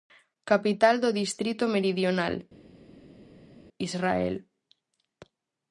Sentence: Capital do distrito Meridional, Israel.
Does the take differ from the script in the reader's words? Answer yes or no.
no